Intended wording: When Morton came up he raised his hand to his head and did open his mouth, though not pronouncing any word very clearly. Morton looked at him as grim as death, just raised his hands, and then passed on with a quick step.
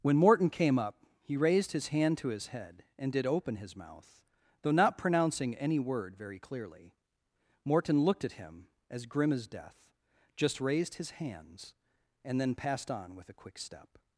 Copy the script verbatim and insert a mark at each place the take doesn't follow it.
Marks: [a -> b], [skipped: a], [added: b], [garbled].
When Morton came up he raised his hand to his head and did open his mouth, though not pronouncing any word very clearly. Morton looked at him as grim as death, just raised his hands, and then passed on with a quick step.